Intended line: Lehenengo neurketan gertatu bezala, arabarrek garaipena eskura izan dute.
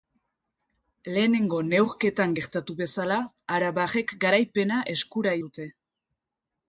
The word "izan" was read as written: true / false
false